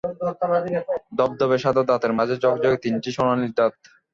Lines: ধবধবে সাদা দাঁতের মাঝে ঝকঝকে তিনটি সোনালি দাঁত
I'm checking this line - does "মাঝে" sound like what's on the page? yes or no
yes